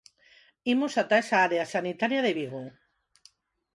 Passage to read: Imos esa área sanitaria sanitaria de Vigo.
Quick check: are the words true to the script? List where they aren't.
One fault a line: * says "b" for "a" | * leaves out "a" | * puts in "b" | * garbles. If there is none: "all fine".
* puts in "ata"
* leaves out "sanitaria"